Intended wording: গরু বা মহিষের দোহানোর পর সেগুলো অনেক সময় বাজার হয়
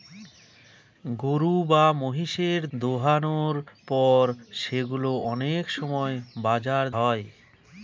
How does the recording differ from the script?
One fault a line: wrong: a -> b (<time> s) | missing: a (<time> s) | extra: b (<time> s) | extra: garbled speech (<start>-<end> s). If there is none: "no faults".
no faults